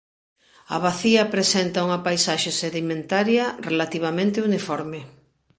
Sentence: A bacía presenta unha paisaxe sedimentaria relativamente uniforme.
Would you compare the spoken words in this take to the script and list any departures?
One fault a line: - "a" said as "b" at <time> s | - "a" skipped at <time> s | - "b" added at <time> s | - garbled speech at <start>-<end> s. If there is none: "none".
none